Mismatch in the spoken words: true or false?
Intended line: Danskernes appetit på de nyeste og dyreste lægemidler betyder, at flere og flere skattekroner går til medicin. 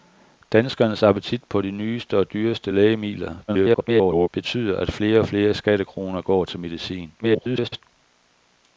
true